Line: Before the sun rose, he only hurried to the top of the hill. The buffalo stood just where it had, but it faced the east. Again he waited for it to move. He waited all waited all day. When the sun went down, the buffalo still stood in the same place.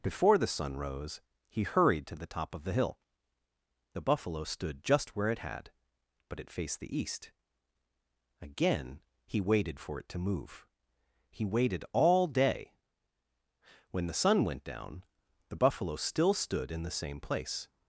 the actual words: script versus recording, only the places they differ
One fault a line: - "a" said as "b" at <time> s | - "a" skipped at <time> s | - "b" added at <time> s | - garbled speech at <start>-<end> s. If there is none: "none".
- "only" skipped at 1.6 s
- "waited all" skipped at 12.3 s